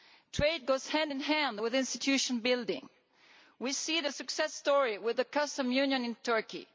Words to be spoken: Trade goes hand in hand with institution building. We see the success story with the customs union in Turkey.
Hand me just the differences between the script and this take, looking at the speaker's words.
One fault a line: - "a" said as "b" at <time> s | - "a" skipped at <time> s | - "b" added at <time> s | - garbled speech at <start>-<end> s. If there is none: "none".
none